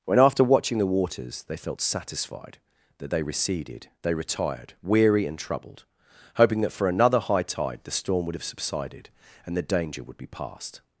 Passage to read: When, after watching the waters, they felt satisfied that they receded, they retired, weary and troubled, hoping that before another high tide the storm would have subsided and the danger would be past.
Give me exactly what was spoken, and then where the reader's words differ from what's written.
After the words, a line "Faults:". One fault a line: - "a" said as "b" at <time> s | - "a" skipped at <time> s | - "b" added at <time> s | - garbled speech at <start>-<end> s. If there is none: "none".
When, after watching the waters, they felt satisfied that they receded, they retired, weary and troubled, hoping that for another high tide the storm would have subsided and the danger would be past.
Faults:
- "before" said as "for" at 6.7 s